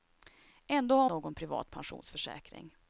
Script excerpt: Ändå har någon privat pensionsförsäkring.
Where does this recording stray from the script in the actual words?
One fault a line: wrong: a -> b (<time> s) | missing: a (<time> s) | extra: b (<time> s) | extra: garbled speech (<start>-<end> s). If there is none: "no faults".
no faults